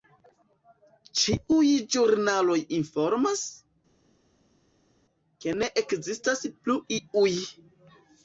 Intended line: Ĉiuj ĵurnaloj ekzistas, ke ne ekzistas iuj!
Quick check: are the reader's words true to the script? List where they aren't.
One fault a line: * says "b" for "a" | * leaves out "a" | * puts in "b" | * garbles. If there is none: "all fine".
* says "informas" for "ekzistas"
* puts in "plu"